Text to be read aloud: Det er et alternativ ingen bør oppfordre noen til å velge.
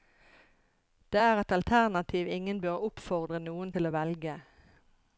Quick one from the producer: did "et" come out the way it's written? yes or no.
yes